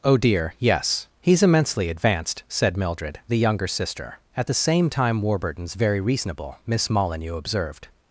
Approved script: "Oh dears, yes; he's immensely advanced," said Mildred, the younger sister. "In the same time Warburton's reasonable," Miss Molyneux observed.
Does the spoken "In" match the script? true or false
false